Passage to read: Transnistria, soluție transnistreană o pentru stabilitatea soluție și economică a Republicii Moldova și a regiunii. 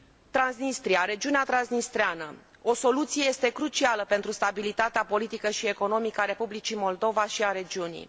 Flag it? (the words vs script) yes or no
yes